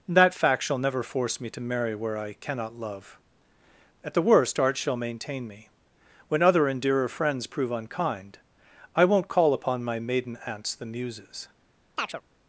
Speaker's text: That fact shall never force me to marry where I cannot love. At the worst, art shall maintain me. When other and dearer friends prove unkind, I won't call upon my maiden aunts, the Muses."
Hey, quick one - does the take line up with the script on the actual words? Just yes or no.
yes